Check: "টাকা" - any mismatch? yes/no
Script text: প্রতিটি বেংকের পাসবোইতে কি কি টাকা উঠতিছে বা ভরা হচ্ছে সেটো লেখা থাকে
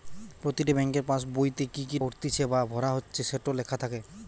yes